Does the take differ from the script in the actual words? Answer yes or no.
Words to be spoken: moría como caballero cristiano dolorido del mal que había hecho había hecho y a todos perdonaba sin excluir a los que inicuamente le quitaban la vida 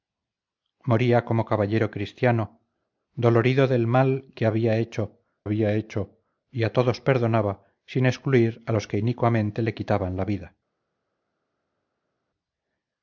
no